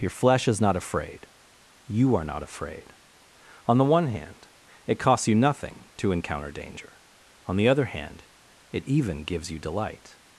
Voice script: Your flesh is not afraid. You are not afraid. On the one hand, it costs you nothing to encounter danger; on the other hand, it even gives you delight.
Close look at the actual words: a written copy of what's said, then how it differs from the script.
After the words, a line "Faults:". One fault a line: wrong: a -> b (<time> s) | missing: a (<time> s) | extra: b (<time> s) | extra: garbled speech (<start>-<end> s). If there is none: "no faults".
Your flesh is not afraid. You are not afraid. On the one hand, it costs you nothing to encounter danger; on the other hand, it even gives you delight.
Faults:
no faults